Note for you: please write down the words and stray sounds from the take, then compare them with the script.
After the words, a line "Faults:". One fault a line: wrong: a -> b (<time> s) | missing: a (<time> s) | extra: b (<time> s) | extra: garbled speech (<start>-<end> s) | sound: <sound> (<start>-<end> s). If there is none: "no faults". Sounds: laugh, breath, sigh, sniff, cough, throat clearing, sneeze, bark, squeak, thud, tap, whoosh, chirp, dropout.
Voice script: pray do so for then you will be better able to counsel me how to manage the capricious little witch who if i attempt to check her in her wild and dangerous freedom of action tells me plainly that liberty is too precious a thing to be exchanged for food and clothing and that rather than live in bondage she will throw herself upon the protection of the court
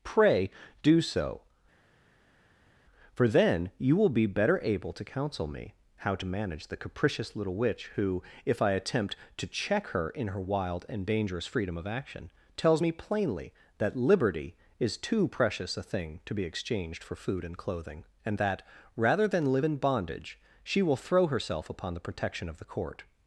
pray do so for then you will be better able to counsel me how to manage the capricious little witch who if i attempt to check her in her wild and dangerous freedom of action tells me plainly that liberty is too precious a thing to be exchanged for food and clothing and that rather than live in bondage she will throw herself upon the protection of the court
Faults:
no faults